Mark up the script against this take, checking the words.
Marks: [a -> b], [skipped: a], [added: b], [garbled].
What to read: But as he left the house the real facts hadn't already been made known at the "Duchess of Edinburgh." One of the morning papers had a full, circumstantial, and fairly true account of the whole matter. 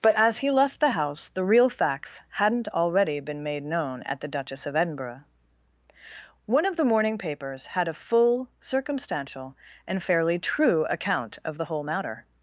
But as he left the house the real facts hadn't already been made known at the "Duchess of Edinburgh." One of the morning papers had a full, circumstantial, and fairly true account of the whole matter.